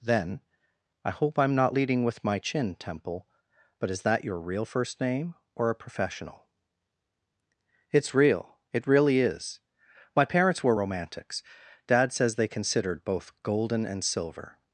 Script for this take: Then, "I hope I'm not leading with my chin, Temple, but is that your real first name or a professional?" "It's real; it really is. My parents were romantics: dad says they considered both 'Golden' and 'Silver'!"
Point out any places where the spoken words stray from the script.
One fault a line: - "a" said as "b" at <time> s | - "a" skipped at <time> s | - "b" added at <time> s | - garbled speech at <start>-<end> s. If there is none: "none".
none